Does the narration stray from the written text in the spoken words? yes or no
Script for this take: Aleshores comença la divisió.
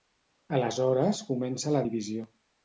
no